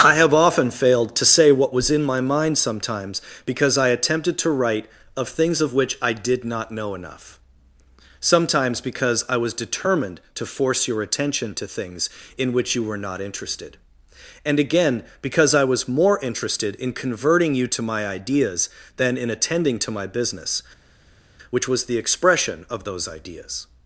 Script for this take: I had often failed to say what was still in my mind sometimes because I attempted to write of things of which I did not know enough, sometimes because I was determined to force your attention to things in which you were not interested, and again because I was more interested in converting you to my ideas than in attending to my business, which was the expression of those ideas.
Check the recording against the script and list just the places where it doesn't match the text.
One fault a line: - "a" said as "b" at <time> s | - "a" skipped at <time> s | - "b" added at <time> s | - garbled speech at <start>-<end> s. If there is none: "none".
- "had" said as "have" at 0.1 s
- "still" skipped at 1.9 s